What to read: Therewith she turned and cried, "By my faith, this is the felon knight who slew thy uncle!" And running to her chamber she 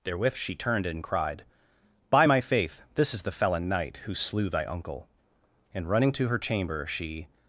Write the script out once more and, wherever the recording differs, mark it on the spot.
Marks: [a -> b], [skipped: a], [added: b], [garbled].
Therewith she turned and cried, "By my faith, this is the felon knight who slew thy uncle!" And running to her chamber she